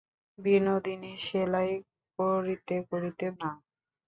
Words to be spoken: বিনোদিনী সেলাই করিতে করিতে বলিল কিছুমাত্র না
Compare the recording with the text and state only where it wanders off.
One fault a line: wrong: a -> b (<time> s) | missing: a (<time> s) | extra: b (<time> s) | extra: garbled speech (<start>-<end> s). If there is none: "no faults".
missing: বলিল কিছুমাত্র (3.2 s)